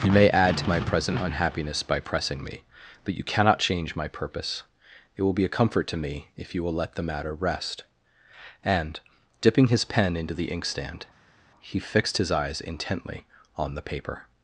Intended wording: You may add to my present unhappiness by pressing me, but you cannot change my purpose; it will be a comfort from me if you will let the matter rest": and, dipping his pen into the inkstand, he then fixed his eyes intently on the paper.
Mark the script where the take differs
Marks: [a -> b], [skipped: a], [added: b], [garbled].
You may add to my present unhappiness by pressing me, but you cannot change my purpose; it will be a comfort [from -> to] me if you will let the matter rest": and, dipping his pen into the inkstand, he [skipped: then] fixed his eyes intently on the paper.